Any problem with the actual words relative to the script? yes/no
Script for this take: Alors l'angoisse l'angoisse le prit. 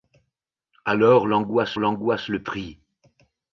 no